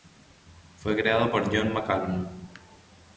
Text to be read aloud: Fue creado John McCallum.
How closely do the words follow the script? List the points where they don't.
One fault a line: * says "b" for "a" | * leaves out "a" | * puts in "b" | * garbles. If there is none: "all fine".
* puts in "por"